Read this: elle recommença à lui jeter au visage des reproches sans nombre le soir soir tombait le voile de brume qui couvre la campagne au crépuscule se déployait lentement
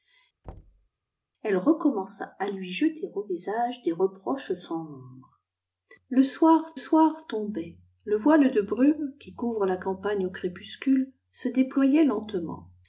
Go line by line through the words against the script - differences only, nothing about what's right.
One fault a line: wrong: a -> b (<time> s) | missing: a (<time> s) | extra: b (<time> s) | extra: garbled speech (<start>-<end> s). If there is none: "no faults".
no faults